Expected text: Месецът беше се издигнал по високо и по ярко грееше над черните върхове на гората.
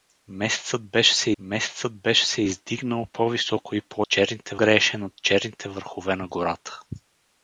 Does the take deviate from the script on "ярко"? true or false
true